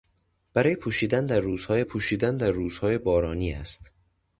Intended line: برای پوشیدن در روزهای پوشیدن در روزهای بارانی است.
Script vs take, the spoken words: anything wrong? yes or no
no